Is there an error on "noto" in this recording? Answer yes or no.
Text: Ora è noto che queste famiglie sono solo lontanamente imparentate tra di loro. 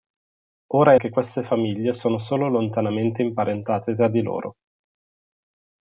yes